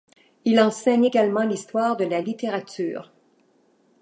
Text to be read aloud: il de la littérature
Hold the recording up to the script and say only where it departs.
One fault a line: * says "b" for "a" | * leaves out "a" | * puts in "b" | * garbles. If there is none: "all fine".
* puts in "enseigne également l'histoire"